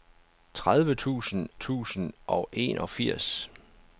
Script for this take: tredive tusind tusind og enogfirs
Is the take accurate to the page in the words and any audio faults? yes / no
yes